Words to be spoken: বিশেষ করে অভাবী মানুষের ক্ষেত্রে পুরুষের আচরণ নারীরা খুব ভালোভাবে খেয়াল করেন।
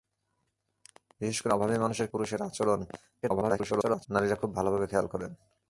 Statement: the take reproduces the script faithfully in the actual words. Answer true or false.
false